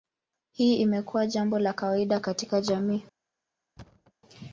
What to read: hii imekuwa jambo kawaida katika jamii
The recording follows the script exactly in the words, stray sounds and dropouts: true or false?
false